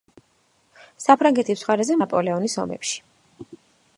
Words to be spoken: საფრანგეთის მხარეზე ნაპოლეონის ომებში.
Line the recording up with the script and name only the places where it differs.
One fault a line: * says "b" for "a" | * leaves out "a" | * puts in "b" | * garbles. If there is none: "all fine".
all fine